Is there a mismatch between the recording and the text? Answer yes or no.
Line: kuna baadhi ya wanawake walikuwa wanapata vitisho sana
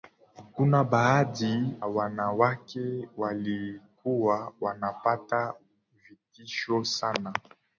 yes